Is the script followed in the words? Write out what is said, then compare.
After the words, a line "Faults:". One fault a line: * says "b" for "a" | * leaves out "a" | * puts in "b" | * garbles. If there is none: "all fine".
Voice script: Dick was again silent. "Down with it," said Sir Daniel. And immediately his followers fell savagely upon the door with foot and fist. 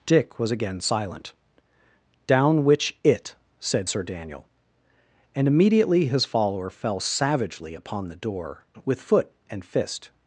Dick was again silent. "Down which it," said Sir Daniel. And immediately his follower fell savagely upon the door with foot and fist.
Faults:
* says "which" for "with"
* says "follower" for "followers"